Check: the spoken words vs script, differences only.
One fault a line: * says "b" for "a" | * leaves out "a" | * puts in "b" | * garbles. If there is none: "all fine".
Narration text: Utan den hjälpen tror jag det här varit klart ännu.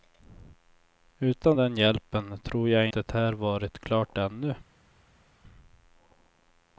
all fine